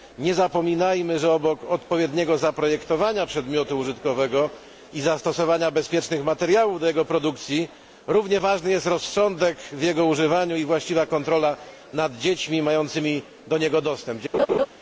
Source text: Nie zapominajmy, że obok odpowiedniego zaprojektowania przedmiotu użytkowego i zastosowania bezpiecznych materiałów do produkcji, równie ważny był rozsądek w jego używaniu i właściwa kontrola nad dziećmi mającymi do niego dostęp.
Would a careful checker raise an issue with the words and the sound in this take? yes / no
yes